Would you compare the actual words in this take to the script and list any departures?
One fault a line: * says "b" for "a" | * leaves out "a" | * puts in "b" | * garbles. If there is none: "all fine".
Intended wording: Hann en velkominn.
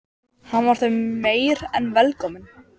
* puts in "var þeim meir"